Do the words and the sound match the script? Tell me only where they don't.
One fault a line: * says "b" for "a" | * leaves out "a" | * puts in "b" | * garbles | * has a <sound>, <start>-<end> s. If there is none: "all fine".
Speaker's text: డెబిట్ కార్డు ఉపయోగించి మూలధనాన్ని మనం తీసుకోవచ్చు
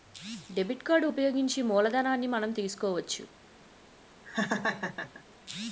* has a laugh, 4.2-5.2 s